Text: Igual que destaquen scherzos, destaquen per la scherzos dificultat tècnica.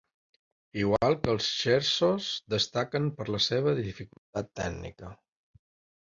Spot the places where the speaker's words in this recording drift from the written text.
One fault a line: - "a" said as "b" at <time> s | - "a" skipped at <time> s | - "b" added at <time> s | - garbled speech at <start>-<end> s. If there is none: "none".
- "destaquen" said as "els" at 1.3 s
- "scherzos" said as "seva" at 3.5 s